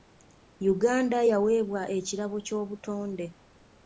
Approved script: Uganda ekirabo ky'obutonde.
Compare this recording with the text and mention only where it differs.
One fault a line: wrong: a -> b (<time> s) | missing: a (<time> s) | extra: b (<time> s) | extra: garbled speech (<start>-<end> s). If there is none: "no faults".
extra: yaweebwa (1.3 s)